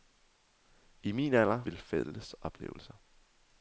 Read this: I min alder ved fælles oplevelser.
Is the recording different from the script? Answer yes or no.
no